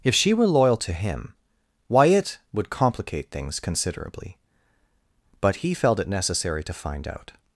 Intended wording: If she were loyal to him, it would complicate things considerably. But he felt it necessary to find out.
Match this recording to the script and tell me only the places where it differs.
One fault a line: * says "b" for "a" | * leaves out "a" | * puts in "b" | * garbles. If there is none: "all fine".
* puts in "why"